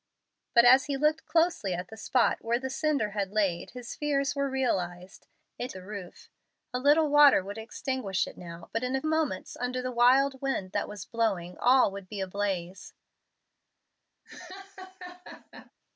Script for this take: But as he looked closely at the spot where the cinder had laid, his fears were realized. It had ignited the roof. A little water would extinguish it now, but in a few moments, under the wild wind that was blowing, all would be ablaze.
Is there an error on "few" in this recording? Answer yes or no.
yes